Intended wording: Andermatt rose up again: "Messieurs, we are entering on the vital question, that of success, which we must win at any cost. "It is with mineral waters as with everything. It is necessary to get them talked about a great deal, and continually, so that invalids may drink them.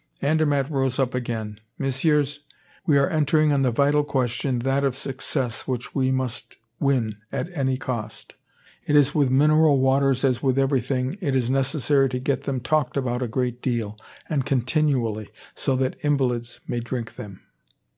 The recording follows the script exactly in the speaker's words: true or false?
true